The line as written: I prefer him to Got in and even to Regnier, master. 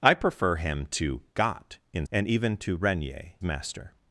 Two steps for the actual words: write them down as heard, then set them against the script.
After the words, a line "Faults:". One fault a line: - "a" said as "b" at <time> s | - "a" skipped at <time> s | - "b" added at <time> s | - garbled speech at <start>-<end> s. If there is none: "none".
I prefer him to Got in and even to Regnier, master.
Faults:
none